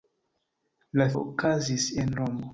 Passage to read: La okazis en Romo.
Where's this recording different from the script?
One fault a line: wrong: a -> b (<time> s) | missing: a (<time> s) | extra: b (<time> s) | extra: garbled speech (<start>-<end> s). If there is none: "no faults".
no faults